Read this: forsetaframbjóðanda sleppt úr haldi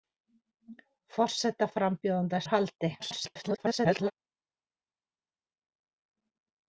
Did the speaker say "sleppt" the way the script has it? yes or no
no